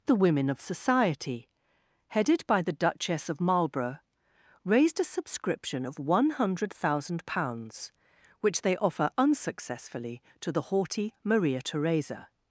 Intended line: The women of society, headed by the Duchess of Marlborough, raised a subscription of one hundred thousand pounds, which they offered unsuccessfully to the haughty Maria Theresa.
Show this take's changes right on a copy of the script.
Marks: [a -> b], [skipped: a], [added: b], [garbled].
The women of society, headed by the Duchess of Marlborough, raised a subscription of one hundred thousand pounds, which they [offered -> offer] unsuccessfully to the haughty Maria Theresa.